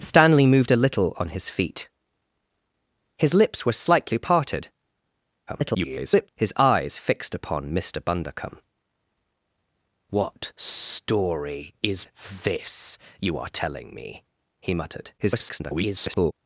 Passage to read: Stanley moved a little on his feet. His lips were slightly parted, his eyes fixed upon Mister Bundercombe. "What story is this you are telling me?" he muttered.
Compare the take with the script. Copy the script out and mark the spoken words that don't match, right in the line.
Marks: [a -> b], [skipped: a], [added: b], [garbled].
Stanley moved a little on his feet. His lips were slightly parted, [garbled] his eyes fixed upon Mister Bundercombe. "What story is this you are telling me?" he muttered. [garbled]